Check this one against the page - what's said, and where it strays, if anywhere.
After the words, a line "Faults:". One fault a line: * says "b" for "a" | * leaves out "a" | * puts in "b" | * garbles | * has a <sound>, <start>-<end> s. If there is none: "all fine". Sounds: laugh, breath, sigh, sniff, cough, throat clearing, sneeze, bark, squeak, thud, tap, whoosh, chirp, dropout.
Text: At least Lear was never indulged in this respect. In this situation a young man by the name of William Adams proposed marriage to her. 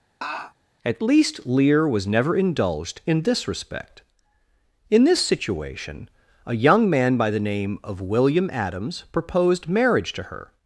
At least Lear was never indulged in this respect. In this situation a young man by the name of William Adams proposed marriage to her.
Faults:
* has a laugh, 0.2-0.5 s